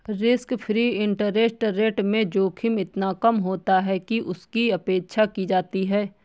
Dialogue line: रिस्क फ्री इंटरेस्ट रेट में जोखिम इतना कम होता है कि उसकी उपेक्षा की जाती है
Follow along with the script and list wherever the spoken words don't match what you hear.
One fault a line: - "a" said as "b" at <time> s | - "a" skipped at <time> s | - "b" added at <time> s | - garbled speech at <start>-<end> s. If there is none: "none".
none